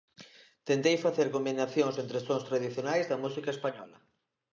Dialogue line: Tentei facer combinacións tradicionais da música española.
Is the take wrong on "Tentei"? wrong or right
right